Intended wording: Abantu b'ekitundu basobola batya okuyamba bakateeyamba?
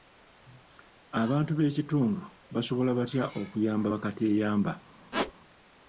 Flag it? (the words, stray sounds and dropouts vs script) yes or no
yes